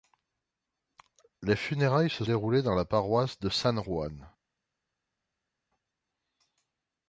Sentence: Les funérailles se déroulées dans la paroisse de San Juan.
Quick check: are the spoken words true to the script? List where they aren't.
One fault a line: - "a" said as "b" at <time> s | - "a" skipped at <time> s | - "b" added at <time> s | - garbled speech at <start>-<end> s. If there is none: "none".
none